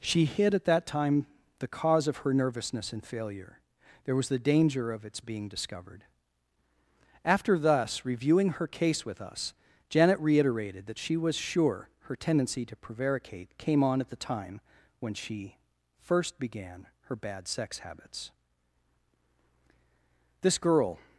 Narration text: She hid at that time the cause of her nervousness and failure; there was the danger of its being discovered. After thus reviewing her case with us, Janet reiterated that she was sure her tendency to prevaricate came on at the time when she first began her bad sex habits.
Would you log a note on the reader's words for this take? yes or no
yes